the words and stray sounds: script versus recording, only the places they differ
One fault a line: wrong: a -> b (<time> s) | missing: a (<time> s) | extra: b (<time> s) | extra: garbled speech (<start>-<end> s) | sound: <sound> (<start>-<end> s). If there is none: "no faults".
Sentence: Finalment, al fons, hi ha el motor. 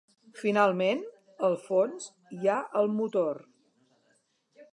no faults